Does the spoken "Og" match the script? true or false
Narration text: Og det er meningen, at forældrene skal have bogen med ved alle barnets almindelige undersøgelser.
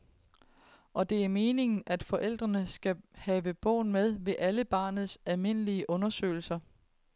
true